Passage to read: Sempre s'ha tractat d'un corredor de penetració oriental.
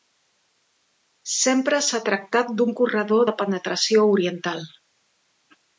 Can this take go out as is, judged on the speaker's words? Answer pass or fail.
pass